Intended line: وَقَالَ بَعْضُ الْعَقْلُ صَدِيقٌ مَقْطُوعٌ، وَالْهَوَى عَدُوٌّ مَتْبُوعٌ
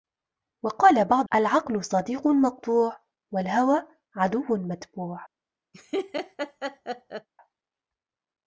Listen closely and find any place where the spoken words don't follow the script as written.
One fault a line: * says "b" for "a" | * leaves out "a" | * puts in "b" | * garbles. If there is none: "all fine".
all fine